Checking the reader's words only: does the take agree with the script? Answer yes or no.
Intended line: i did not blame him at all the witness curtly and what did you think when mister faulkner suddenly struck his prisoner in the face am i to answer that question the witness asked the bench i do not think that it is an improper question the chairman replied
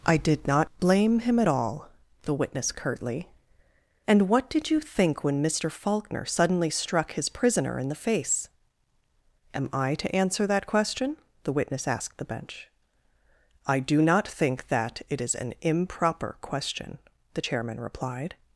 yes